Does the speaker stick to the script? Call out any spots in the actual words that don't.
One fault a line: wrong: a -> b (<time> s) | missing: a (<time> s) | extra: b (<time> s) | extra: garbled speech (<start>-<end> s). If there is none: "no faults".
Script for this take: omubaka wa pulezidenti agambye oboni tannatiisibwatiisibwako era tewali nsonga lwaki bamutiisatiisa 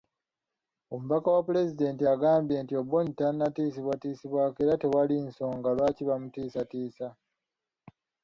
extra: nti (2.6 s)